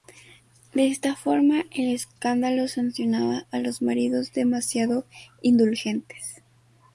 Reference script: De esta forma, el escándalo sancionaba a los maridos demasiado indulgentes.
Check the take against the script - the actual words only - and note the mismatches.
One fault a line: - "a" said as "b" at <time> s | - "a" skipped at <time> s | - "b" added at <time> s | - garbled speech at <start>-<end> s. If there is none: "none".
none